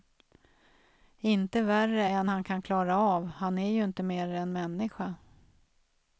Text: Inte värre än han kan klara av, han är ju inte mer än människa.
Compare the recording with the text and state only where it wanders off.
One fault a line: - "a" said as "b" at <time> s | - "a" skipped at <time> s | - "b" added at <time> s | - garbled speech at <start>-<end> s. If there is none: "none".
none